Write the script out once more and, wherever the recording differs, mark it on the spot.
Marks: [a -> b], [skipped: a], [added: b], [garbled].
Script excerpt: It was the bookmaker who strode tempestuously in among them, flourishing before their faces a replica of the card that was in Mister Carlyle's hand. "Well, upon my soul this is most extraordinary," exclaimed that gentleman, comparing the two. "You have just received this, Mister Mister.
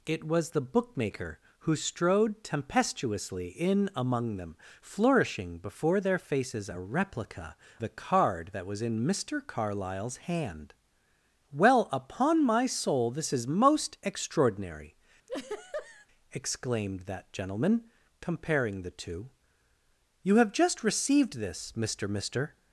It was the bookmaker who strode tempestuously in among them, flourishing before their faces a replica [skipped: of] the card that was in Mister Carlyle's hand. "Well, upon my soul this is most extraordinary," exclaimed that gentleman, comparing the two. "You have just received this, Mister Mister.